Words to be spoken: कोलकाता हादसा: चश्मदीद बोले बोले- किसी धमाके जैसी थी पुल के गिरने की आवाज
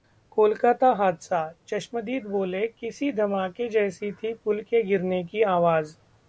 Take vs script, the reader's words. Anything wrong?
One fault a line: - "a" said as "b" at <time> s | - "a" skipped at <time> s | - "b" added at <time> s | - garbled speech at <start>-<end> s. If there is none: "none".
- "बोले" skipped at 2.7 s